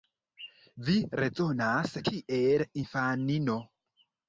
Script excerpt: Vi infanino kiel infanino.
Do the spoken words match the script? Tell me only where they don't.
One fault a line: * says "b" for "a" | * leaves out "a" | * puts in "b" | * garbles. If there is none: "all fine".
* says "rezonas" for "infanino"